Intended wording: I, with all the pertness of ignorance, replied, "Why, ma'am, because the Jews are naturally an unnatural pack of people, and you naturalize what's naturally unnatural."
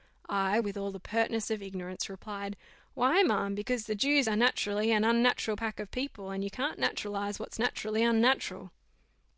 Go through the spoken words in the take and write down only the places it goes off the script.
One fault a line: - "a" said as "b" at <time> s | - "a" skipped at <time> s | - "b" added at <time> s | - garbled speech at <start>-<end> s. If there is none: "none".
- "can't" added at 6.5 s